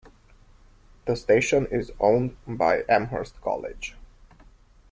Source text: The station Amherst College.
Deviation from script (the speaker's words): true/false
true